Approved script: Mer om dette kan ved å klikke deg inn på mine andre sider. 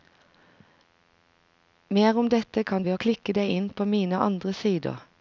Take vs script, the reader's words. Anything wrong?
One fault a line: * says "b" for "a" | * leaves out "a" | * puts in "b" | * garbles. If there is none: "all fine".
all fine